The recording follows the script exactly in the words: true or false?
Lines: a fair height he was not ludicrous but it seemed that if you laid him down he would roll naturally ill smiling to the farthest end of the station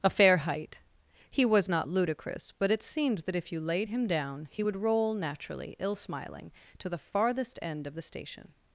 true